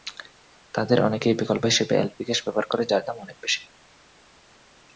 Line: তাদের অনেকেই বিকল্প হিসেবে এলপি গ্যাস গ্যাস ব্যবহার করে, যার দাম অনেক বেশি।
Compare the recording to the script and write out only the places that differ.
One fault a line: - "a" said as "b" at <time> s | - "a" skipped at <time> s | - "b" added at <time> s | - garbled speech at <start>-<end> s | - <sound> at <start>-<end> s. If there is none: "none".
- "গ্যাস" skipped at 2.4 s